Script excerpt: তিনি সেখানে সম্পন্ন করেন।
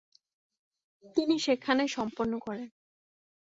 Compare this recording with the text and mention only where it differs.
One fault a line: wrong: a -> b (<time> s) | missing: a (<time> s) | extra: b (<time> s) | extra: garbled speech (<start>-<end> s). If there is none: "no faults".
no faults